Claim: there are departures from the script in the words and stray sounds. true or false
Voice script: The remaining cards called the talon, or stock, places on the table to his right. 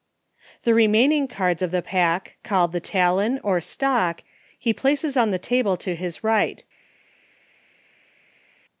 true